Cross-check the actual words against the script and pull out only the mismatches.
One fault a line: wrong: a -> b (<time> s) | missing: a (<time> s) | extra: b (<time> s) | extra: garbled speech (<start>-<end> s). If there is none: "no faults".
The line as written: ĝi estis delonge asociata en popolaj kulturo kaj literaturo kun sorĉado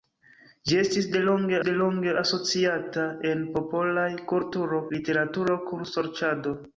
extra: delonge (1.7 s)
missing: kaj (4.8 s)